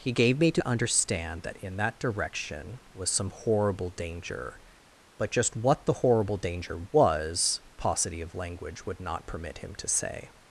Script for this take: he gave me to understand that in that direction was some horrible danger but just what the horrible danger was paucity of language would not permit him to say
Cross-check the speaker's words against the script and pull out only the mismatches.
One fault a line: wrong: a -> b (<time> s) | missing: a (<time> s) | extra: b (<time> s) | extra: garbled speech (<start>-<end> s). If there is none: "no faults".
no faults